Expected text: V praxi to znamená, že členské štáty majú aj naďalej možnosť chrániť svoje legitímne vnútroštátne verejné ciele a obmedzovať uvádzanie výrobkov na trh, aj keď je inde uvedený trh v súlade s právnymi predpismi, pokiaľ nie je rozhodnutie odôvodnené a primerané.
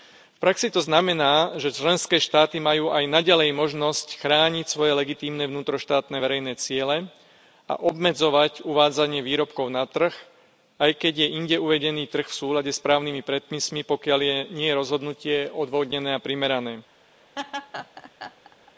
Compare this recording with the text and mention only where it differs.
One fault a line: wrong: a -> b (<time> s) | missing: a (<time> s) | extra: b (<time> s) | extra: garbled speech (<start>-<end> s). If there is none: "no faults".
no faults